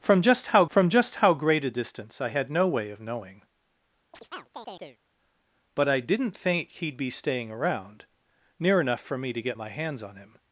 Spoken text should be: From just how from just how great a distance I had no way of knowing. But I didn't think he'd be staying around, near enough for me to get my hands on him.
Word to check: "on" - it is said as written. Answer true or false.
true